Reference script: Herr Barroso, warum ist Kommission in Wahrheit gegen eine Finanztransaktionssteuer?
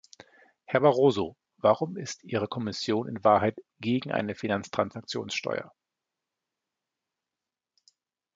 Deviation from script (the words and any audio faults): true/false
true